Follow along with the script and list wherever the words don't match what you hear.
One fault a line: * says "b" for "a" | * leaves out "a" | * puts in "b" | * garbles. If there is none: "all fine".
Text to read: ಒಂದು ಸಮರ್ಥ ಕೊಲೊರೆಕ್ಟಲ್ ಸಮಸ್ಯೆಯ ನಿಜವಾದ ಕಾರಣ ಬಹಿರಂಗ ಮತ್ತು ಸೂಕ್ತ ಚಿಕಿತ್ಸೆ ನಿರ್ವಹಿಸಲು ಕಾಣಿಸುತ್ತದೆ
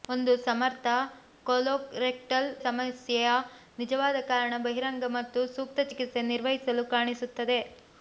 all fine